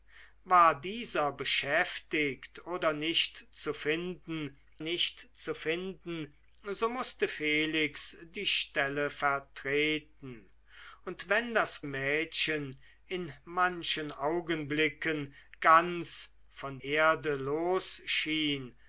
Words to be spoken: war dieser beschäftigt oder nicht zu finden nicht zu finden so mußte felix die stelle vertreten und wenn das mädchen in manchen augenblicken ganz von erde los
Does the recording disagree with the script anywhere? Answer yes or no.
no